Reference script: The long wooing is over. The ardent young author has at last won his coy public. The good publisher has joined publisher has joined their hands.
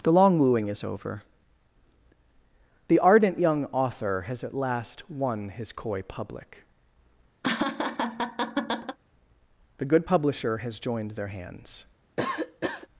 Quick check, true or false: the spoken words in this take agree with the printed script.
false